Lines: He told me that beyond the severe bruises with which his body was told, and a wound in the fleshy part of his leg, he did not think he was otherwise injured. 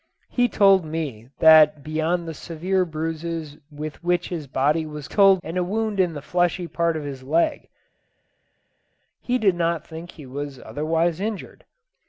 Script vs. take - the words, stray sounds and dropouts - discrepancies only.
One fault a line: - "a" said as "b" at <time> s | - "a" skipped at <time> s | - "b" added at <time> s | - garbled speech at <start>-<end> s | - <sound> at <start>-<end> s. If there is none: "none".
none